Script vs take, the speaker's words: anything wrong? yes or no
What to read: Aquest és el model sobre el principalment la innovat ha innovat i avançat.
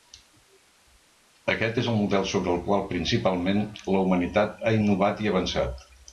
yes